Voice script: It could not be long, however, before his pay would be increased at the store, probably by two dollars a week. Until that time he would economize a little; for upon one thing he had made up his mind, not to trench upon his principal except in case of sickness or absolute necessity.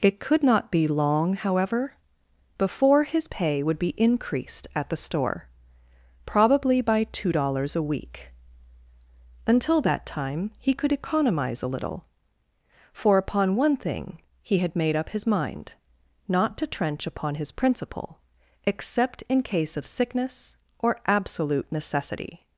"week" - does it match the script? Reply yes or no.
yes